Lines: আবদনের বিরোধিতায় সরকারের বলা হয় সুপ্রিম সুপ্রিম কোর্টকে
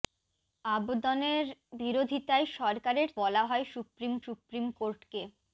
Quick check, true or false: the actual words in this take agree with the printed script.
true